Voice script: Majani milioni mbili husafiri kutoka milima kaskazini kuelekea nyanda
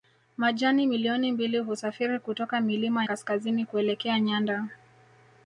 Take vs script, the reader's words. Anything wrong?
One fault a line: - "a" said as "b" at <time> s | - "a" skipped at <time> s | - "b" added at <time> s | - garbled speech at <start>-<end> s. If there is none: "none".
none